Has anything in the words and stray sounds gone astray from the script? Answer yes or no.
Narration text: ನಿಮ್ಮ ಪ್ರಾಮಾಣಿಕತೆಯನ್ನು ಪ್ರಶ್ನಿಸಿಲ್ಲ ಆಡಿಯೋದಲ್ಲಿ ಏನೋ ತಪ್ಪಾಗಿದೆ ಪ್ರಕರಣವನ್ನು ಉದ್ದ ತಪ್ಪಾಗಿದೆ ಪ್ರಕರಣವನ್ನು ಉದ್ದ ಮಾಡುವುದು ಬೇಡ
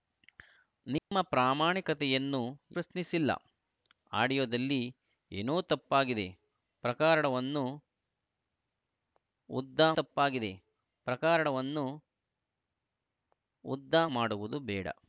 yes